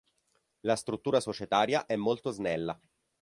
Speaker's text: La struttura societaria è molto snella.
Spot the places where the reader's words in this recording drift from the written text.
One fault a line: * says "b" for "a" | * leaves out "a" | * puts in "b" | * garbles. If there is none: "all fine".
all fine